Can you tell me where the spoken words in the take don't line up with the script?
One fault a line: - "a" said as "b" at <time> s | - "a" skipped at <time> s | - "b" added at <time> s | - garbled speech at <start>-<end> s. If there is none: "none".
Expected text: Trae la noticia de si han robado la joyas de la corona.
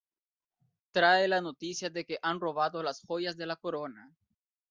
- "si" said as "que" at 2.0 s
- "la" said as "las" at 2.8 s